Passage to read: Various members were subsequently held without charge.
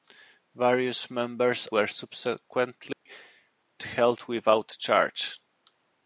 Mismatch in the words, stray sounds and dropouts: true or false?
true